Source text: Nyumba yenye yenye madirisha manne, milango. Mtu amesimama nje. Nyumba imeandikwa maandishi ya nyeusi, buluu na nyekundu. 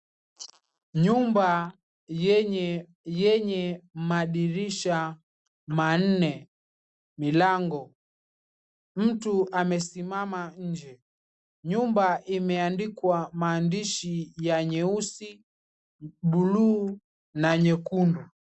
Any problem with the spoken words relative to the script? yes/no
no